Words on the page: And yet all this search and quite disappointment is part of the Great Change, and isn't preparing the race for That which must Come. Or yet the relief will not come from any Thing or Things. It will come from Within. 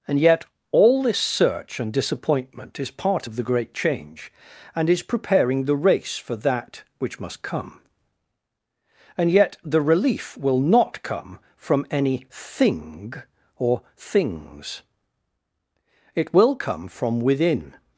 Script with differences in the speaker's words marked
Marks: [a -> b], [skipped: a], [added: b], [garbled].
And yet all this search and [skipped: quite] disappointment is part of the Great Change, and [isn't -> is] preparing the race for That which must Come. [Or -> And] yet the relief will not come from any Thing or Things. It will come from Within.